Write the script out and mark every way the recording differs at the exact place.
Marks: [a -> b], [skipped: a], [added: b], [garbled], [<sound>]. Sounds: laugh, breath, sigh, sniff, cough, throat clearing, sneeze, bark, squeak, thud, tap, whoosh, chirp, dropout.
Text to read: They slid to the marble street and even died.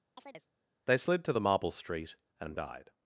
[chirp] They slid to the marble street and [skipped: even] died.